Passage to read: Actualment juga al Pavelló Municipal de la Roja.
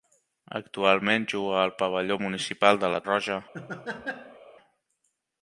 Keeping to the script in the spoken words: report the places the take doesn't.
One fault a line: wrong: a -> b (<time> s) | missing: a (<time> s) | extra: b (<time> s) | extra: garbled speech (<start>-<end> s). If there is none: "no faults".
no faults